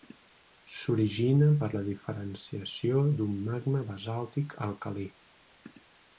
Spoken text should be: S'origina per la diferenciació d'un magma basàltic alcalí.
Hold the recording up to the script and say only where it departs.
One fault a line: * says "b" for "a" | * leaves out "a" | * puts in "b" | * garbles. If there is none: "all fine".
all fine